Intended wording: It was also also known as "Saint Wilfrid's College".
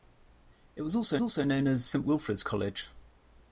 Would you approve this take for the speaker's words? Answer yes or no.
yes